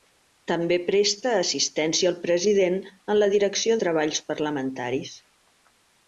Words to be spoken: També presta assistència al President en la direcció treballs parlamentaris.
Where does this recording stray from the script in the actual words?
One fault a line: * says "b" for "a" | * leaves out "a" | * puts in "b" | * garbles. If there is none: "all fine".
all fine